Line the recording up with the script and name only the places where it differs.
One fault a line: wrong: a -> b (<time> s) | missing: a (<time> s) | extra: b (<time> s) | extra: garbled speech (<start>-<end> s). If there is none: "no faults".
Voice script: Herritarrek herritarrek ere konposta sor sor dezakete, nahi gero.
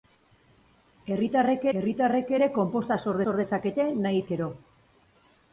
no faults